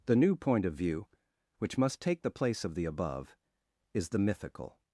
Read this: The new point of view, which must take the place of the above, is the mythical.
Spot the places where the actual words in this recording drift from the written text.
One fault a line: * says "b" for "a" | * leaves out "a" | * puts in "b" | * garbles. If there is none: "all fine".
all fine